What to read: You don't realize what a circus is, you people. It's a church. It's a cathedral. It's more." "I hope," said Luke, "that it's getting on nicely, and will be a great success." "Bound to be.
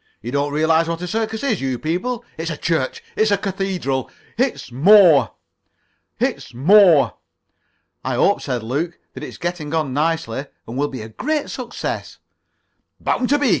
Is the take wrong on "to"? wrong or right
right